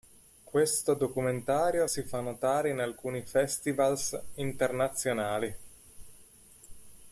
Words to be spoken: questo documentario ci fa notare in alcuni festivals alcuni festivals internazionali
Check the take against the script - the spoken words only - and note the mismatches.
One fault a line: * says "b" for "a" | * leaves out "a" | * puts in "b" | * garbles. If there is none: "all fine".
* says "si" for "ci"
* leaves out "alcuni festivals"